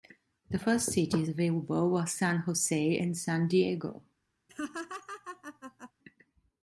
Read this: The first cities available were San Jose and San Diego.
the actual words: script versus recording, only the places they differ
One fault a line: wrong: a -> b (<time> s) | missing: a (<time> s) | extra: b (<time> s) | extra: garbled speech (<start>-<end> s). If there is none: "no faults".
no faults